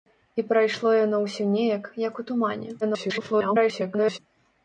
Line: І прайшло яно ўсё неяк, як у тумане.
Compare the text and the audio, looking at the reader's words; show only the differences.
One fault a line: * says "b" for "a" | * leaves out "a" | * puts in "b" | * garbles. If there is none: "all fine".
* garbles